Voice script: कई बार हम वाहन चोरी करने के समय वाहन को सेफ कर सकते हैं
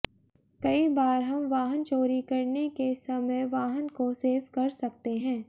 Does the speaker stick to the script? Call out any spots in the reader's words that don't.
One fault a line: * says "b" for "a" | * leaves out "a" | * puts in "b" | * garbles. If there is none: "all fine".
all fine